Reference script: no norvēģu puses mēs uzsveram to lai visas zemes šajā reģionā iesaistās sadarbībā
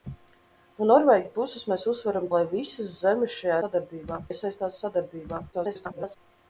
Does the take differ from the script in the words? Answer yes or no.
yes